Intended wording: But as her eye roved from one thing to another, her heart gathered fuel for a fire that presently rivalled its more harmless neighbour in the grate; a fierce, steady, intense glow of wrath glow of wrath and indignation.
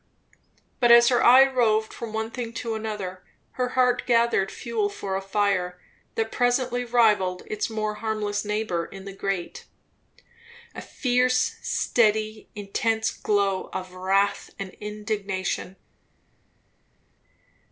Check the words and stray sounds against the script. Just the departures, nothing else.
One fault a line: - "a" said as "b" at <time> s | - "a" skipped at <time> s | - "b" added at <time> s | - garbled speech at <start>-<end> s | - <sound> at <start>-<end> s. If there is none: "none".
- "glow of wrath" skipped at 14.5 s